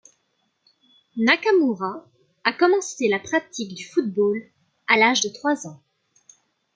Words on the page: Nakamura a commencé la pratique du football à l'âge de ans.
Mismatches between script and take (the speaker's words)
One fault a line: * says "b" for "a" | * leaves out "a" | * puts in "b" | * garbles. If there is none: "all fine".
* puts in "trois"